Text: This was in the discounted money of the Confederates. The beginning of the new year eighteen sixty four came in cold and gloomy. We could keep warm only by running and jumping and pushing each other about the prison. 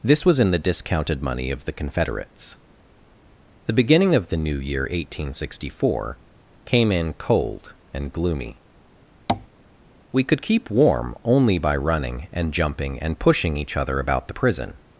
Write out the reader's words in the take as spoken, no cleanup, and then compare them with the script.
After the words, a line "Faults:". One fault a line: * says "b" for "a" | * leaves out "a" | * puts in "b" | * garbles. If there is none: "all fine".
This was in the discounted money of the Confederates. The beginning of the new year eighteen sixty four came in cold and gloomy. We could keep warm only by running and jumping and pushing each other about the prison.
Faults:
all fine